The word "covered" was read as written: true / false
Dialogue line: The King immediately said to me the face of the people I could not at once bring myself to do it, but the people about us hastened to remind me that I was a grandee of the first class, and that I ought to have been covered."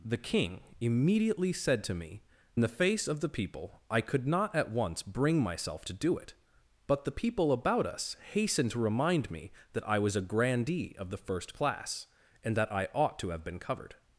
true